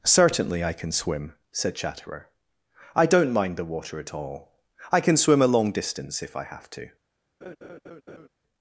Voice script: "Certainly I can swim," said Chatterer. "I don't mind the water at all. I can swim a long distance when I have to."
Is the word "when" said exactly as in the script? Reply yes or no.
no